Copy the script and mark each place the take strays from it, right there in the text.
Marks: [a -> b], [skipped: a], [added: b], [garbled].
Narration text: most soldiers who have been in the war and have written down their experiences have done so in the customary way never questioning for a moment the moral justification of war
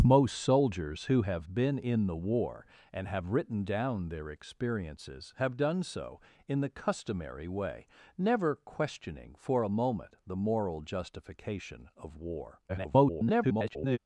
most soldiers who have been in the war and have written down their experiences have done so in the customary way never questioning for a moment the moral justification of war [garbled]